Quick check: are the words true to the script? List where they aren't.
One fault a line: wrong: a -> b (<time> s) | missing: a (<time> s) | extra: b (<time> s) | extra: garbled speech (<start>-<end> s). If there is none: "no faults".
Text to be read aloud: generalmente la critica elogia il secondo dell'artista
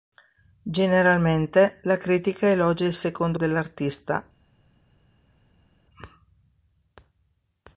no faults